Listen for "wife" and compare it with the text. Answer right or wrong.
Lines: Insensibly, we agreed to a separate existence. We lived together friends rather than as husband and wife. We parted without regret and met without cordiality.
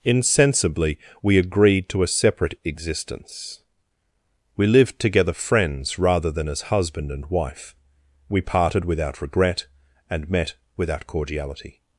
right